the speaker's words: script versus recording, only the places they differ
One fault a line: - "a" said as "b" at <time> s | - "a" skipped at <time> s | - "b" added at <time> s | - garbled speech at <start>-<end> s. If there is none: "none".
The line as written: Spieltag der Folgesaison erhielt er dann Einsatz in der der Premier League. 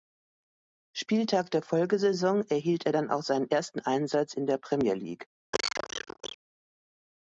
- "auch seinen ersten" added at 3.1 s
- "der" skipped at 4.6 s